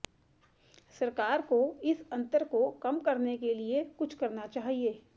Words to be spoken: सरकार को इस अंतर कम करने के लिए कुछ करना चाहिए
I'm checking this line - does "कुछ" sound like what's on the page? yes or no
yes